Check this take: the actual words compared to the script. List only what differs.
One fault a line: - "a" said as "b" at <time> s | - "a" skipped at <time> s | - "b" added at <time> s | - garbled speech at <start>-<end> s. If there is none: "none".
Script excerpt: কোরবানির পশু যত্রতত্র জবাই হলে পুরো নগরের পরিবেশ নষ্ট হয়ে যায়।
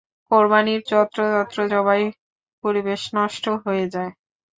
- "পশু" skipped at 0.8 s
- "হলে পুরো নগরের" skipped at 2.0 s